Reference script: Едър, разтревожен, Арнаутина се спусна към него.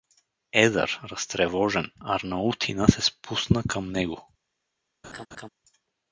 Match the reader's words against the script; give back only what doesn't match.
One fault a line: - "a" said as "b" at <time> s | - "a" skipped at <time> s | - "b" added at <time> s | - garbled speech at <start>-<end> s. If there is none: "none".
none